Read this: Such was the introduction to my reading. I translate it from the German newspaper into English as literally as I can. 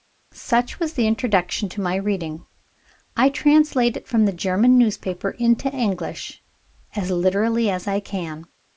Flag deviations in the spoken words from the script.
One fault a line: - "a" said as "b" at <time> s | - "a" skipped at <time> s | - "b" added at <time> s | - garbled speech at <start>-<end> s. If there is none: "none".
none